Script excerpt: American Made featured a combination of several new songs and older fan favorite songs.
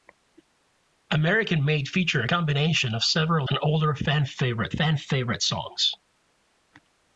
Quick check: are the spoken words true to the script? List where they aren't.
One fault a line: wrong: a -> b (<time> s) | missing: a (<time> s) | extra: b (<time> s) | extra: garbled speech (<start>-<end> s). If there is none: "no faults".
wrong: new songs and older -> and older fan favorite (3.5 s)